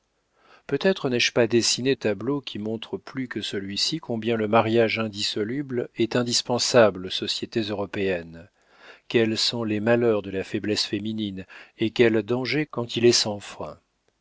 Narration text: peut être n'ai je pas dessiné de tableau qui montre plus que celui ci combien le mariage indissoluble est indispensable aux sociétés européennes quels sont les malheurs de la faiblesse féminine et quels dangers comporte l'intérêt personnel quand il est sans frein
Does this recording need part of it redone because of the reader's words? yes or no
yes